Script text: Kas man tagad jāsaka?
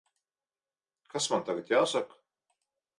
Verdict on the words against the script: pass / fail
pass